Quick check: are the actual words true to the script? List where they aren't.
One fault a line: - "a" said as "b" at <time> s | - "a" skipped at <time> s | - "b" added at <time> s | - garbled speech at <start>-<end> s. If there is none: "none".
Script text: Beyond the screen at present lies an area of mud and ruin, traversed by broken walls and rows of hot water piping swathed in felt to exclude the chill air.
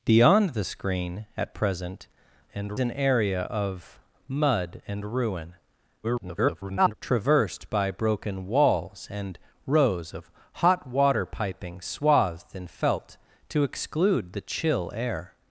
- "lies" said as "and" at 2.5 s
- garbled speech at 6.0-6.9 s